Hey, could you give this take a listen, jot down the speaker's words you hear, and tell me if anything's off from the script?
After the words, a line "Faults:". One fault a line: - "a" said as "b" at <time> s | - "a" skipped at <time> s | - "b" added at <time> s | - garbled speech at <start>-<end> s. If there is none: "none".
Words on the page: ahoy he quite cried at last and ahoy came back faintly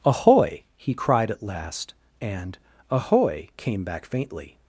ahoy he cried at last and ahoy came back faintly
Faults:
- "quite" skipped at 0.9 s